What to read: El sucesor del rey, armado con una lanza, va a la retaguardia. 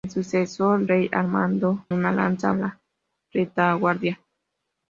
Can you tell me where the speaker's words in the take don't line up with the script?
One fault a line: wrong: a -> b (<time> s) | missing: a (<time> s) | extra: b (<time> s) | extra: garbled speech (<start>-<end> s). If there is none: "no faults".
missing: del (0.9 s)
missing: con (1.8 s)
missing: va (2.5 s)